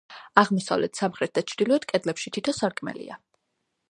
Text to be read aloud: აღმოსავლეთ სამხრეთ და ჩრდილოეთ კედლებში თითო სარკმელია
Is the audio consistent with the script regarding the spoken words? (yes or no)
yes